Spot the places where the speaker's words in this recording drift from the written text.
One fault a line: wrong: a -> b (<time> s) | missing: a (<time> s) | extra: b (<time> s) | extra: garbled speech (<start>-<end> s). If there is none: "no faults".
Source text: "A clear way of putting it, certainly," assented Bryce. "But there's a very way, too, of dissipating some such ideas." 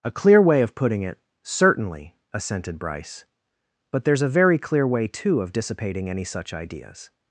extra: clear (4.6 s)
wrong: some -> any (6.1 s)